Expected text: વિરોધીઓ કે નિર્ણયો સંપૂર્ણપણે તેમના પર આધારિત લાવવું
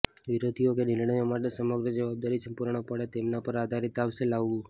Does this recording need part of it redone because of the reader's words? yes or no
yes